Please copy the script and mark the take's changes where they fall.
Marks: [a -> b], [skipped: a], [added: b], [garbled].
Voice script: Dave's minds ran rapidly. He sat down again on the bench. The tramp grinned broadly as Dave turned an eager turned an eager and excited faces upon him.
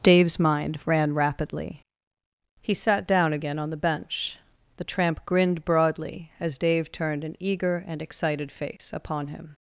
Dave's [minds -> mind] ran rapidly. He sat down again on the bench. The tramp grinned broadly as Dave turned an eager [skipped: turned an eager] and excited [faces -> face] upon him.